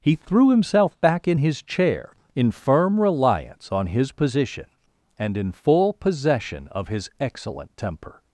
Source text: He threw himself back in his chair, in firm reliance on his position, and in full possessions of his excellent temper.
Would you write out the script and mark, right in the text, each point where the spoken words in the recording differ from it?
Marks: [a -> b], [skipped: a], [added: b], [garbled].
He threw himself back in his chair, in firm reliance on his position, and in full [possessions -> possession] of his excellent temper.